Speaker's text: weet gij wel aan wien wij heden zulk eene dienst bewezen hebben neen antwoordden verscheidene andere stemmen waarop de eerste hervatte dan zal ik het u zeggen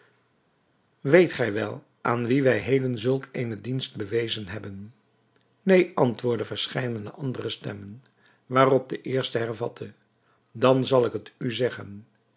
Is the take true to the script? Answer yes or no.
yes